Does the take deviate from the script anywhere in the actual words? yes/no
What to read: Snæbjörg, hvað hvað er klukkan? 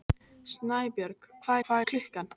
no